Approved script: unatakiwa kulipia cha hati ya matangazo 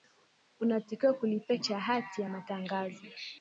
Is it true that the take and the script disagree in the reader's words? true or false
false